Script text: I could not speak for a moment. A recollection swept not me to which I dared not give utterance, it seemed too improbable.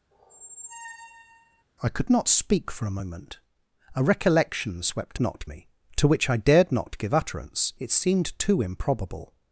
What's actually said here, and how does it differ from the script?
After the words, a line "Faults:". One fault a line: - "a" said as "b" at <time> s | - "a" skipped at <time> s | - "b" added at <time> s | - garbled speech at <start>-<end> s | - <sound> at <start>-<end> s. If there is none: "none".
I could not speak for a moment. A recollection swept not me to which I dared not give utterance, it seemed too improbable.
Faults:
- squeak at 0.1-1.6 s